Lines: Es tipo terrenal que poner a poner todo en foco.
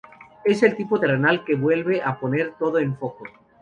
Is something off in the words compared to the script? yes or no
yes